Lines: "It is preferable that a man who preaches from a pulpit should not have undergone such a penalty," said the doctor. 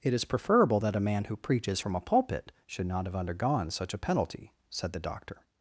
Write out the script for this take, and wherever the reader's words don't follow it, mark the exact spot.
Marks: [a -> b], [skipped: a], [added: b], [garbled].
"It is preferable that a man who preaches from a pulpit should not have undergone such a penalty," said the doctor.